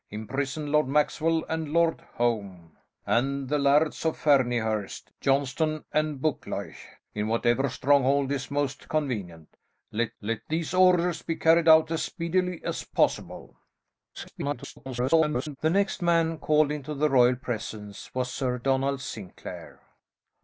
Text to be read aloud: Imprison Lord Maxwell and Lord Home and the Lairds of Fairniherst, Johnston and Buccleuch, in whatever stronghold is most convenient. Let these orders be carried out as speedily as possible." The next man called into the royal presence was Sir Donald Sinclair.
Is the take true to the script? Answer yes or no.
no